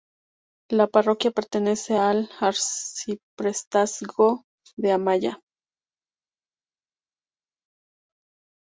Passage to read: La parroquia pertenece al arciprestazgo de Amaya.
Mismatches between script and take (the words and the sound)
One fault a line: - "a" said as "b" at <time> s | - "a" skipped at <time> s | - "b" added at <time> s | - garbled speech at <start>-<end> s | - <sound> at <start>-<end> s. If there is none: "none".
none